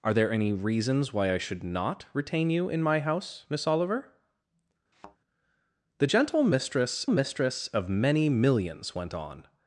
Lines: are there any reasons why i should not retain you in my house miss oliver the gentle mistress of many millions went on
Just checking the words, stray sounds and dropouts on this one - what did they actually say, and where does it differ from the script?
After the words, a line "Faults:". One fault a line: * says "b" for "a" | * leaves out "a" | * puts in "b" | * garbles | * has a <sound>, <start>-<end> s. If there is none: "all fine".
are there any reasons why i should not retain you in my house miss oliver the gentle mistress mistress of many millions went on
Faults:
* has a thud, 4.9-5.2 s
* puts in "mistress"